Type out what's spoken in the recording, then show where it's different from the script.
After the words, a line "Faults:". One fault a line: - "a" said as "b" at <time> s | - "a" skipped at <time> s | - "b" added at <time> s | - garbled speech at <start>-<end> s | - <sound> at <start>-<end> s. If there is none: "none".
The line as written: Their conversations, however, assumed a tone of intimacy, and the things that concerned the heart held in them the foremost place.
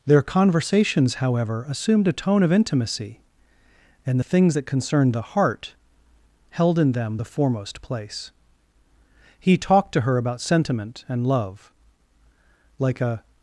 Their conversations, however, assumed a tone of intimacy, and the things that concerned the heart held in them the foremost place. He talked to her about sentiment and love, like a
Faults:
- "He talked to her about sentiment and love like a" added at 9.4 s